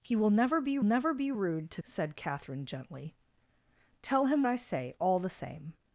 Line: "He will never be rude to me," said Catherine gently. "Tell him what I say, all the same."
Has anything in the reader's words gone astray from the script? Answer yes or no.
yes